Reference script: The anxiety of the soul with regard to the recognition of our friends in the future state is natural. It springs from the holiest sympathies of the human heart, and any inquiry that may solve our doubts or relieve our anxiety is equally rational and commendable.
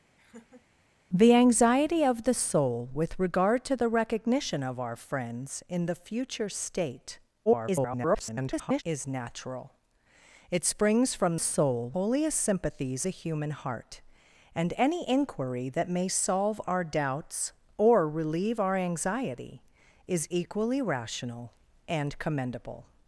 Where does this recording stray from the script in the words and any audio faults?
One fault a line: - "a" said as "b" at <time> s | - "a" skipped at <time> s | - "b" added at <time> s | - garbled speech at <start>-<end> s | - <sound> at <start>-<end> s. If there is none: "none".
- laugh at 0.2-0.7 s
- garbled speech at 7.5-8.8 s
- "the" said as "soul" at 11.4 s
- "of" skipped at 13.0 s